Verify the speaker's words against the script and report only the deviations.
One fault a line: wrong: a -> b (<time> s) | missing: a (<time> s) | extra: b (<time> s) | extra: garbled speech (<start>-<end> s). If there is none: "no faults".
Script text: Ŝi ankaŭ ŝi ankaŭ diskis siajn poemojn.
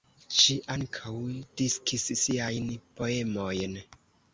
missing: ŝi ankaŭ (1.1 s)